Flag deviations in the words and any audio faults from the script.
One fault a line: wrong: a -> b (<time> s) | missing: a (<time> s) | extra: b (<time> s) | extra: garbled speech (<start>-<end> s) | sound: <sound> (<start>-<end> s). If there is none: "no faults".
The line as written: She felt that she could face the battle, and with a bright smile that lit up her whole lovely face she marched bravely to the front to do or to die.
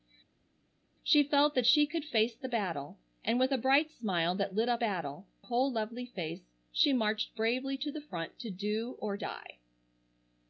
wrong: her -> battle (4.8 s)
missing: to (9.2 s)